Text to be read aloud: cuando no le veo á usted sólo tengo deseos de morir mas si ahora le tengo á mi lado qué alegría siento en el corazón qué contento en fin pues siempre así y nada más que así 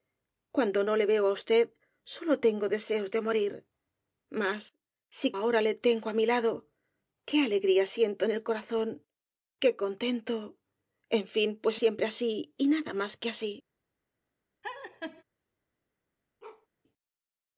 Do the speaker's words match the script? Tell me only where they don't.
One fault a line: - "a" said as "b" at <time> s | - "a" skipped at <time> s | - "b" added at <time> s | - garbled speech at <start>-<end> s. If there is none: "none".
none